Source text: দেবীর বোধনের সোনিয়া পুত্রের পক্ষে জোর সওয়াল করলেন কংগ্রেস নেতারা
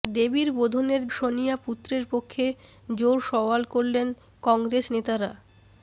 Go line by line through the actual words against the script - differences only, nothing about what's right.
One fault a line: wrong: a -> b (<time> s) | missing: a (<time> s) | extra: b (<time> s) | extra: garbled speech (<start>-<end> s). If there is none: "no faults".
no faults